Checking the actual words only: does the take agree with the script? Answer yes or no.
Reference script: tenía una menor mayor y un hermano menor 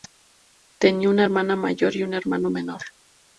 no